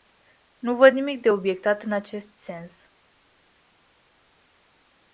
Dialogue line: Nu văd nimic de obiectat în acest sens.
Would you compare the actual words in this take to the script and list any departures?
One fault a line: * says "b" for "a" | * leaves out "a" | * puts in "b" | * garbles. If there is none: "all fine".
all fine